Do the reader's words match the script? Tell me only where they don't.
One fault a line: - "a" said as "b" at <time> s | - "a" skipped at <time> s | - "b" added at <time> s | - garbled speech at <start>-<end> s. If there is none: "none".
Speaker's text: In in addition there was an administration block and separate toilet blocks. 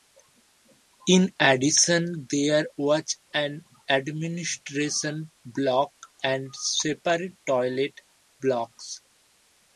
- "in" skipped at 1.3 s